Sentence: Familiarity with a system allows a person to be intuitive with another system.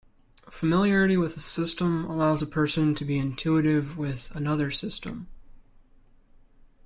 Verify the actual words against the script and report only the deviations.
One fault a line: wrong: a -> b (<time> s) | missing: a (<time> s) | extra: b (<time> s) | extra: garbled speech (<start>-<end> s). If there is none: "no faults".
no faults